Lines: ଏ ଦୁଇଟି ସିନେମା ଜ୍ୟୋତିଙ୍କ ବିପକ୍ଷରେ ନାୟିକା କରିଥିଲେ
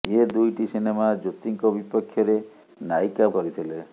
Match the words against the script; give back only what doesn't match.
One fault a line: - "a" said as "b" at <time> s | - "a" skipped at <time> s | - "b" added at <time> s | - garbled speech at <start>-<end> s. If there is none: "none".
none